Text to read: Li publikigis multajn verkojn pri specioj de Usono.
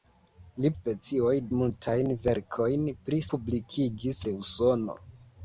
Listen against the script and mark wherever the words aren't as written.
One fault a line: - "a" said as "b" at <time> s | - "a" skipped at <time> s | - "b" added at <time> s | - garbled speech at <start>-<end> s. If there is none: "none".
- "publikigis" said as "specioj" at 0.7 s
- "specioj" said as "publikigis" at 3.3 s